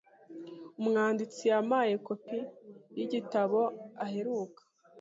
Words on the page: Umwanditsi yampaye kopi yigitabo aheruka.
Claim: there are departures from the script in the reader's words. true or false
false